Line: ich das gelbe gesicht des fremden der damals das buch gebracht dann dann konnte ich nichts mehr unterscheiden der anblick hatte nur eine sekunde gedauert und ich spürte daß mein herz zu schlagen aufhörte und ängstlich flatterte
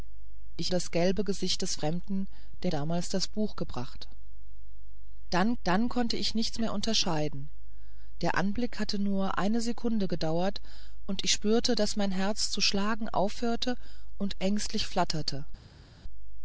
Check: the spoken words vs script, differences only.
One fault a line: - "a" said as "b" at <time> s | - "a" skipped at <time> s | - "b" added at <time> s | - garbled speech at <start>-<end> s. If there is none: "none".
none